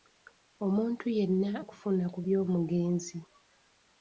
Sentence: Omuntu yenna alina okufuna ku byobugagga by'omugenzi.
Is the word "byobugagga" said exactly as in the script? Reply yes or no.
no